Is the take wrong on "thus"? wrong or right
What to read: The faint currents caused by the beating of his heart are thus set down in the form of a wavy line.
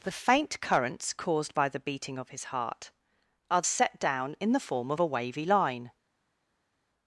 wrong